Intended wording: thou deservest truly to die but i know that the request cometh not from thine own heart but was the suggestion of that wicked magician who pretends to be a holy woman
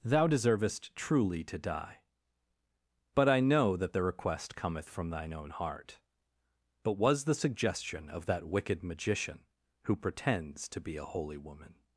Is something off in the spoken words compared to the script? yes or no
yes